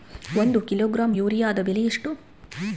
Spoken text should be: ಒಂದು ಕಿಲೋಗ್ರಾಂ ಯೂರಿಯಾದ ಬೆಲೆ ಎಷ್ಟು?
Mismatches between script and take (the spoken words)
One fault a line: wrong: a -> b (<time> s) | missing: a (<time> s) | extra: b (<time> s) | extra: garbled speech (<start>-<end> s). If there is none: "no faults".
no faults